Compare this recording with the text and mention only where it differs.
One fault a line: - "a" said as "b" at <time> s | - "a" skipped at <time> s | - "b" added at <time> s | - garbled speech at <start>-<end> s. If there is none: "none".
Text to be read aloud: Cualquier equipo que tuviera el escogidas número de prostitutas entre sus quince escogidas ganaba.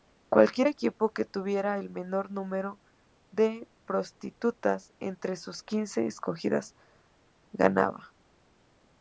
- "escogidas" said as "menor" at 1.9 s